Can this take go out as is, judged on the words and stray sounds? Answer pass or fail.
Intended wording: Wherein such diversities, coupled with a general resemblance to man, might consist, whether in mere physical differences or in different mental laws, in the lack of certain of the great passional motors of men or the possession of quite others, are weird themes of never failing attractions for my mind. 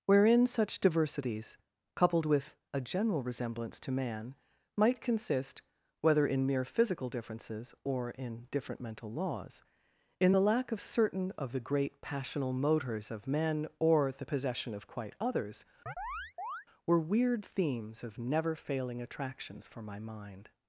fail